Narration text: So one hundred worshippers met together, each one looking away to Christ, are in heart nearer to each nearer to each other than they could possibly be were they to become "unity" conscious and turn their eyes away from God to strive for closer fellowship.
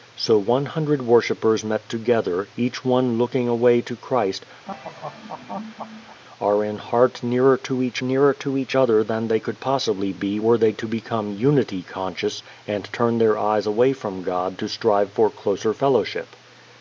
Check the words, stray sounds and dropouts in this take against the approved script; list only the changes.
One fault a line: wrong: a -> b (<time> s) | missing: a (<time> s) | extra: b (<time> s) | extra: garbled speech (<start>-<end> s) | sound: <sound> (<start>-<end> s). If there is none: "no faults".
sound: laugh (4.7-6.2 s)